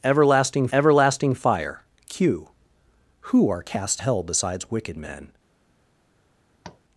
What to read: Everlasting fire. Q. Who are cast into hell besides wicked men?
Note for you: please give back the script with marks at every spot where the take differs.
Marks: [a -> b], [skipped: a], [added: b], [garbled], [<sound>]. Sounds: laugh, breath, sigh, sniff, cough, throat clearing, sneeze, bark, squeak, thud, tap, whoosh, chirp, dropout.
Everlasting [added: everlasting] fire. Q. Who are cast [skipped: into] hell besides wicked men? [tap]